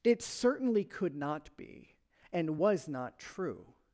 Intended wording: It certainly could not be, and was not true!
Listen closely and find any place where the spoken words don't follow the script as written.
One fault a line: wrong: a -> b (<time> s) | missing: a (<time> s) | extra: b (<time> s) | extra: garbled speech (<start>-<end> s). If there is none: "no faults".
no faults